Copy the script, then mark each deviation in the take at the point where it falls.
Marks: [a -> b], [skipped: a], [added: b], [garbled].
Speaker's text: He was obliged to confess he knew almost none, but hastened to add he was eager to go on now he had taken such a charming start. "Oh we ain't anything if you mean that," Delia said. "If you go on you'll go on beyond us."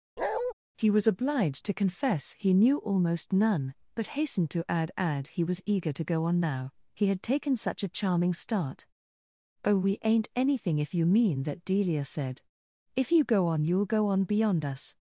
He was obliged to confess he knew almost none, but hastened to add [added: add] he was eager to go on now he had taken such a charming start. "Oh we ain't anything if you mean that," Delia said. "If you go on you'll go on beyond us."